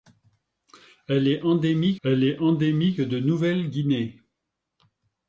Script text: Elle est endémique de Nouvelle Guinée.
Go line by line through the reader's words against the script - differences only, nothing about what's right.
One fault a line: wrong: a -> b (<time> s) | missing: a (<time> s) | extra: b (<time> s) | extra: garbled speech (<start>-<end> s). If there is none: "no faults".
extra: elle est endémique (2.0 s)